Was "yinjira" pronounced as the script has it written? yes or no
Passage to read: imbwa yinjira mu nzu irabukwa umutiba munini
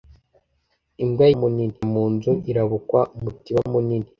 no